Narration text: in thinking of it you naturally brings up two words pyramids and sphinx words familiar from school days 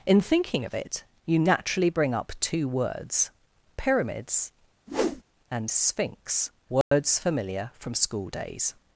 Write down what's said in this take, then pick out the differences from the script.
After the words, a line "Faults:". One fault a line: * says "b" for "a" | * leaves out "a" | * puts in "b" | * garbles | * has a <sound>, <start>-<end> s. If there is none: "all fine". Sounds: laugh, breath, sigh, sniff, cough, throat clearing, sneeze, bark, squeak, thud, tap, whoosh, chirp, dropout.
in thinking of it you naturally bring up two words pyramids and sphinx words familiar from school days
Faults:
* says "bring" for "brings"
* has a whoosh, 4.9-5.2 s
* has a dropout, 6.8-6.9 s